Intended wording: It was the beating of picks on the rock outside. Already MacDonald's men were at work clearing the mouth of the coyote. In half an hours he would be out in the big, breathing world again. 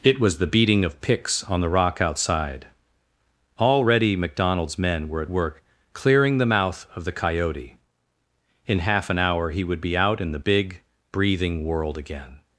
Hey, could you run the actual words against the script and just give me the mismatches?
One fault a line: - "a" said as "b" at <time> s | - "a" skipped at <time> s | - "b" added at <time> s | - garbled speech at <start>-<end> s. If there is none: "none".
- "hours" said as "hour" at 9.2 s